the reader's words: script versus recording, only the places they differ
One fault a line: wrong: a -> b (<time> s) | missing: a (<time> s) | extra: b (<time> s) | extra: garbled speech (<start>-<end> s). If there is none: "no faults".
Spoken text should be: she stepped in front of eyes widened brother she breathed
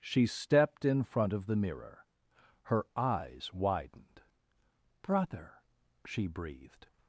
extra: the mirror her (1.4 s)